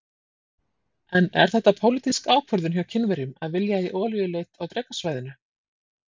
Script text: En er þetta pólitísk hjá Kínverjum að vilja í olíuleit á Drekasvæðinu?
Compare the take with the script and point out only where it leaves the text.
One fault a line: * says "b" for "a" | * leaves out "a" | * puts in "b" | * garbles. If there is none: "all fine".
* puts in "ákvörðun"